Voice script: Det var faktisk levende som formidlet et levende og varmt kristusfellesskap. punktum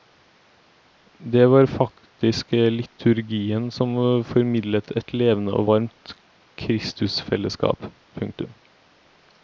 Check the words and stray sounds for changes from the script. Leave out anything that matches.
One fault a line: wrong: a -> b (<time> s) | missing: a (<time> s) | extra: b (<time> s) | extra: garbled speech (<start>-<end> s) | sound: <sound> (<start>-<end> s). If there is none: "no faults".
wrong: levende -> liturgien (2.5 s)